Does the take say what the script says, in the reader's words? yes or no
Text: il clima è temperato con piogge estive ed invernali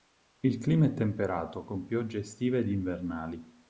yes